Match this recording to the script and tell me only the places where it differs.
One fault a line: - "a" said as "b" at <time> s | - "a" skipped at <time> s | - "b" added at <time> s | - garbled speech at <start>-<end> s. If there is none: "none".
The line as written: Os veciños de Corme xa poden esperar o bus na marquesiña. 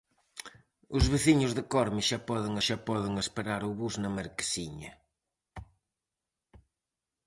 - "xa poden" added at 2.7 s